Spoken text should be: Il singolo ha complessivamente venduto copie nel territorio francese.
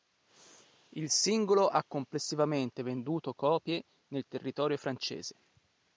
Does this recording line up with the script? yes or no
yes